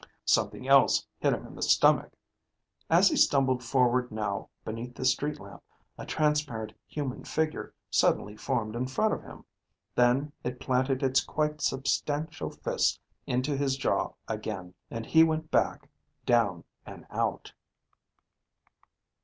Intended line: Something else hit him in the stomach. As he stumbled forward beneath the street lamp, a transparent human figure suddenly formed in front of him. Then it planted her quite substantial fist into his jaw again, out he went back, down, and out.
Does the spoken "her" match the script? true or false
false